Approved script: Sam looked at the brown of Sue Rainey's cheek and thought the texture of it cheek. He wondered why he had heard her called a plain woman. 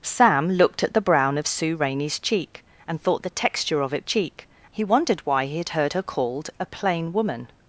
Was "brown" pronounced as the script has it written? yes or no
yes